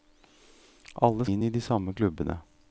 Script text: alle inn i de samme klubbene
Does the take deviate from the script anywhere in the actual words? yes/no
no